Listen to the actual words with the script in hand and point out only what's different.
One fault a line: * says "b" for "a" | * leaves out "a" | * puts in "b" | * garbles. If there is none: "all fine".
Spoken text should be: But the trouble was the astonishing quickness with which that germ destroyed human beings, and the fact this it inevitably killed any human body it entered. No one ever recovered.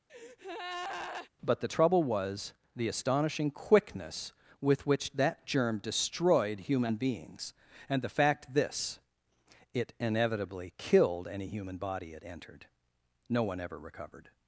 all fine